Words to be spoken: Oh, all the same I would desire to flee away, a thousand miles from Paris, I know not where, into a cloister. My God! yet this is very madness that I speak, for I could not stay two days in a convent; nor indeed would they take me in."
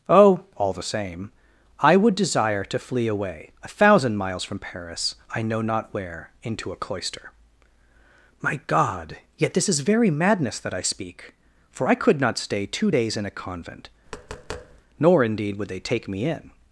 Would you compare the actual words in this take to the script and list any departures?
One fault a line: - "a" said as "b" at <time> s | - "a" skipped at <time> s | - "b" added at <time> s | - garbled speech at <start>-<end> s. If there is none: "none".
none